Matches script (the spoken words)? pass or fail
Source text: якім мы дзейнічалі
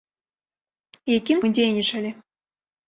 pass